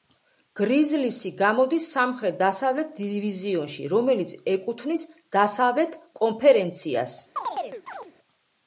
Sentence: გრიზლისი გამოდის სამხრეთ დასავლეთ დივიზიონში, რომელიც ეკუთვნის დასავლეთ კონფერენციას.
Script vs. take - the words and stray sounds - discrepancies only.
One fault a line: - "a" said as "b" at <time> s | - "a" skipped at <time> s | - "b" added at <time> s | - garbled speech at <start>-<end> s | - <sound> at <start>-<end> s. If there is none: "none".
- chirp at 7.4-8.1 s